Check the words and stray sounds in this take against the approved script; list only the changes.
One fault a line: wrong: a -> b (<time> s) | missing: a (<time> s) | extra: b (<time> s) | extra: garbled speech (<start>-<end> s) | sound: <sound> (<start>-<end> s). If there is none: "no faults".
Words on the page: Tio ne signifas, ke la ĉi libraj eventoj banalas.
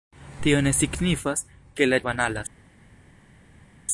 missing: ĉi libraj eventoj (2.0 s)